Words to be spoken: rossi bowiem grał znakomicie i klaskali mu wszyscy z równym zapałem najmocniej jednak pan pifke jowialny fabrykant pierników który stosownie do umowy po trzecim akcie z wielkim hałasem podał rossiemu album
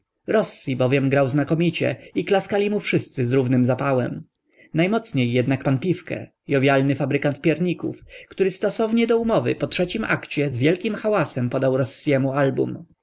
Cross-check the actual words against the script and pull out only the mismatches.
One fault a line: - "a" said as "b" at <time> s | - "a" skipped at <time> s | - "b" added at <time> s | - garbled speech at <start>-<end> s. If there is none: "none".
none